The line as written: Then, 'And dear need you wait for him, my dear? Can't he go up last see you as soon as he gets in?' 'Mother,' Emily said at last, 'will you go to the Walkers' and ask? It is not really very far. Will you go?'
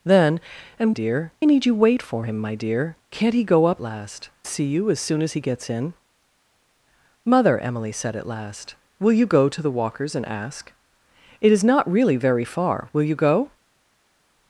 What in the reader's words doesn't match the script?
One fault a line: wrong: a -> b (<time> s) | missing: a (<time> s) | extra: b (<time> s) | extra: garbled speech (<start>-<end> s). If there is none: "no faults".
no faults